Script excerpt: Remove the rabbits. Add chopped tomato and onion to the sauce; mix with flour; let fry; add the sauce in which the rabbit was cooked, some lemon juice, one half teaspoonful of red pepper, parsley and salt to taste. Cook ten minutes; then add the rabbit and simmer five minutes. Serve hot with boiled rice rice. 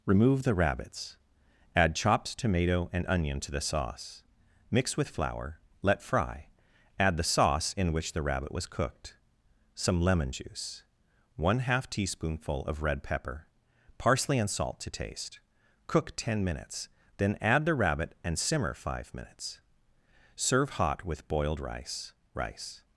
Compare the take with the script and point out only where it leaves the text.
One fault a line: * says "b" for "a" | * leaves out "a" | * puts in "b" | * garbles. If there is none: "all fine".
all fine